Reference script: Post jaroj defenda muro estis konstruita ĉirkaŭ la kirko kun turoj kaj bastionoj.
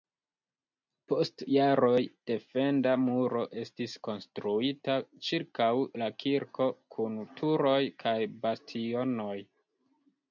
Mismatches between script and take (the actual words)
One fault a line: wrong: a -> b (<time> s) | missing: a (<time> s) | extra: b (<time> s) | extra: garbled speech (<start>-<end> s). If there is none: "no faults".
no faults